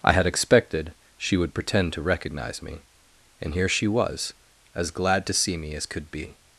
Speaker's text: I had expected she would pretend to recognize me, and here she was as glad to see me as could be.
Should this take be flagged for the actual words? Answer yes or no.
no